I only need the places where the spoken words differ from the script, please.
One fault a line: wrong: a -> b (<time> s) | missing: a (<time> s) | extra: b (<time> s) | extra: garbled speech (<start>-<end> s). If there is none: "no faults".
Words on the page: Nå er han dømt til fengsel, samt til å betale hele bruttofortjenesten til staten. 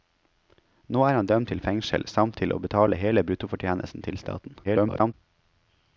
extra: garbled speech (4.6-5.1 s)